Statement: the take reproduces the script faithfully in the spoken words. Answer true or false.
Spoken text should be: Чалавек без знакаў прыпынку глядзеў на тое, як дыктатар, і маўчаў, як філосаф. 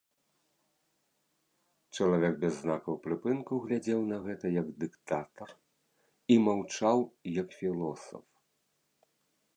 false